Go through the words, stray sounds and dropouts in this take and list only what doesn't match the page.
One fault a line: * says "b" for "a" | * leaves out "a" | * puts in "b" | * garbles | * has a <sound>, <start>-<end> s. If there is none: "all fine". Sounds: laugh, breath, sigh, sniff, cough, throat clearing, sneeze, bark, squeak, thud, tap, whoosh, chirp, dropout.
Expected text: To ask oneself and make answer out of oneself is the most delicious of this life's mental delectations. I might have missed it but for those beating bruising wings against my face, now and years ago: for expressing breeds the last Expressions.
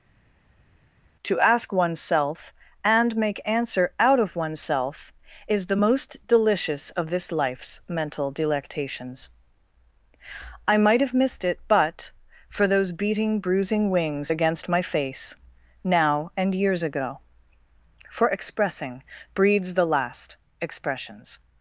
all fine